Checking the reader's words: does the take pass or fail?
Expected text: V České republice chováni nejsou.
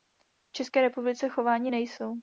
pass